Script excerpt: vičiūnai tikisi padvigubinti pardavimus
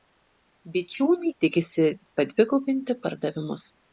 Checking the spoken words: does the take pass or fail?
pass